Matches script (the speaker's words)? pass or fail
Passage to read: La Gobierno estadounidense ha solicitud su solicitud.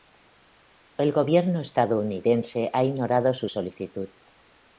fail